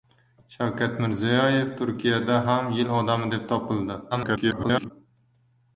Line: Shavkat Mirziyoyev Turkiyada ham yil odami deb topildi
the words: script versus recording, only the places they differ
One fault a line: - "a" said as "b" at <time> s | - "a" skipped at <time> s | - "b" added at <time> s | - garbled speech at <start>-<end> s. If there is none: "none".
- garbled speech at 4.1-4.9 s